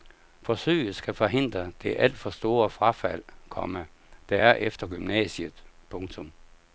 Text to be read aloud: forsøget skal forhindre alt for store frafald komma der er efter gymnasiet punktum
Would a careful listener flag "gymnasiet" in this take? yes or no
no